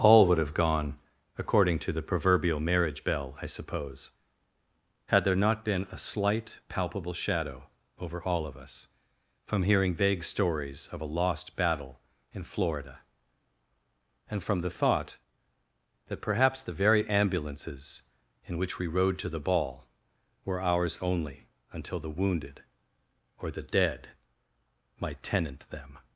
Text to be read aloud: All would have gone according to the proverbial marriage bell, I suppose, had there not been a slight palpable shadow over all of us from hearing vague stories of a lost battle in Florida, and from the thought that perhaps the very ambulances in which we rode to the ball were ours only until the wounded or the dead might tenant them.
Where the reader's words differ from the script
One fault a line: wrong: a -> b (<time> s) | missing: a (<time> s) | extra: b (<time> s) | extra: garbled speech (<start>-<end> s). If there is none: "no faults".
no faults